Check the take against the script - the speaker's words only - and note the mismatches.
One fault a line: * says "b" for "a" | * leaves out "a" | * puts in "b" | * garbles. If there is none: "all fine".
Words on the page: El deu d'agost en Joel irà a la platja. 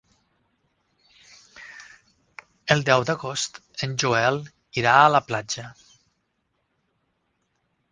all fine